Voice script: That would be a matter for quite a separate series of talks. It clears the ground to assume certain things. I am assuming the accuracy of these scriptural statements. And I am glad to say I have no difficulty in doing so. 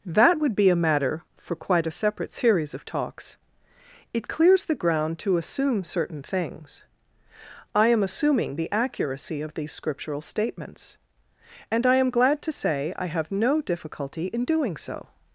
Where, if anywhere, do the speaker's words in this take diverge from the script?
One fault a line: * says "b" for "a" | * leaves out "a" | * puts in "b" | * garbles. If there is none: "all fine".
all fine